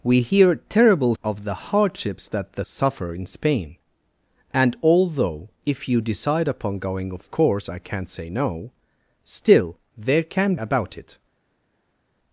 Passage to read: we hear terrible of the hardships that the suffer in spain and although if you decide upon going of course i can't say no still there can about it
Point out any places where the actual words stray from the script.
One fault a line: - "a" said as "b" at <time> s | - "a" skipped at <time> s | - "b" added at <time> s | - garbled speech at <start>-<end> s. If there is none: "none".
none